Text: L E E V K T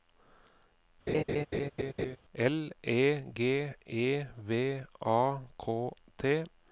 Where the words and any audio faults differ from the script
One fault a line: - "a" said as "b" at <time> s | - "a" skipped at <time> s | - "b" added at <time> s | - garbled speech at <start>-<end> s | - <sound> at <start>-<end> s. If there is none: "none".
- laugh at 1.1-2.2 s
- "G" added at 3.3 s
- "A" added at 5.0 s